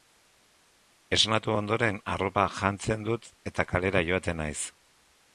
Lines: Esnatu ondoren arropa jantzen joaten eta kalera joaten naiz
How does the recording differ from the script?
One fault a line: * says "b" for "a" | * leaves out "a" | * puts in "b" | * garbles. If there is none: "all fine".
* says "dut" for "joaten"